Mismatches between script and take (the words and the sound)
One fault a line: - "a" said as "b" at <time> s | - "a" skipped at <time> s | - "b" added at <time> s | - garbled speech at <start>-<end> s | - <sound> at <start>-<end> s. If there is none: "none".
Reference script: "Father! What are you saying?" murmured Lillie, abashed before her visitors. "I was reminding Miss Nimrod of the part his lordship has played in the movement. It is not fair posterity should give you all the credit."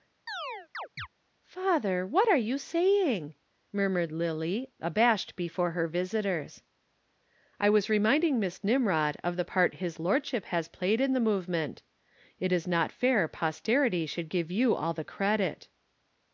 - chirp at 0.3-1.1 s